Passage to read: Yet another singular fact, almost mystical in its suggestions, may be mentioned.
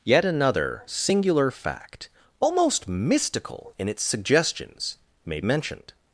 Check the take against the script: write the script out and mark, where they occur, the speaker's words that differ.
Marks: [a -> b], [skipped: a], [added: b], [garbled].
Yet another singular fact, almost mystical in its suggestions, may [skipped: be] mentioned.